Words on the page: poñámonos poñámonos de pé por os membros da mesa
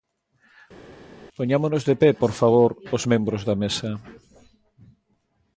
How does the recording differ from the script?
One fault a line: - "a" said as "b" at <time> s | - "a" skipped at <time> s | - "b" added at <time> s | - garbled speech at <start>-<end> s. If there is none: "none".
- "poñámonos" skipped at 1.8 s
- "favor" added at 2.4 s